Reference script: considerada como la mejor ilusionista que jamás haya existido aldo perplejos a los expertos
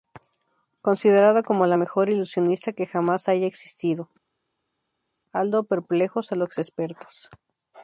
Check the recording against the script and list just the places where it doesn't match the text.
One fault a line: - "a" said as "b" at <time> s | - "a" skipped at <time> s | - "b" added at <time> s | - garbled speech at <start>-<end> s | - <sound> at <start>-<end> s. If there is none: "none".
none